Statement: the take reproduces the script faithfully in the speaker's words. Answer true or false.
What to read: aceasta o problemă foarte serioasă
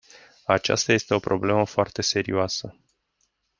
false